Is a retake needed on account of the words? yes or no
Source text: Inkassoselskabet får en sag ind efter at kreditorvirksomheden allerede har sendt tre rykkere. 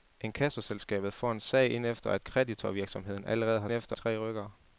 yes